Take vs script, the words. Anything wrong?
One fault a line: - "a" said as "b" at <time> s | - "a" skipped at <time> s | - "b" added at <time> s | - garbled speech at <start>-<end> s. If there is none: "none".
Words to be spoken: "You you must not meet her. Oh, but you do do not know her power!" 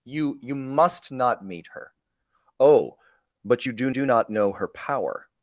none